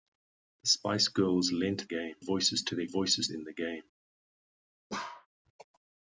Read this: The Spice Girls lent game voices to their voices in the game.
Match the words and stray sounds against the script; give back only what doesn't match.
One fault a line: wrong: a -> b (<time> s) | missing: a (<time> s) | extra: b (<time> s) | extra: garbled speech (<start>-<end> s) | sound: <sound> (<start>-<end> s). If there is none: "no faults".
sound: bark (4.9-5.3 s)